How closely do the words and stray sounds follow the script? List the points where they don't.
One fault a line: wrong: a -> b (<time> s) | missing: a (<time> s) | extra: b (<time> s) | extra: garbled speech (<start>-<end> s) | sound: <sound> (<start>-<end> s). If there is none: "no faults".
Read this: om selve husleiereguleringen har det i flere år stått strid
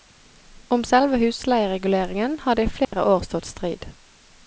sound: dropout (2.8-2.9 s)